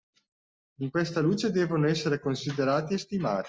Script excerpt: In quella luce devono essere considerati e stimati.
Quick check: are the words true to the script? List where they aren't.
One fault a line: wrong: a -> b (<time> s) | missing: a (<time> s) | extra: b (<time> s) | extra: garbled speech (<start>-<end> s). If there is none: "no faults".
wrong: quella -> questa (0.9 s)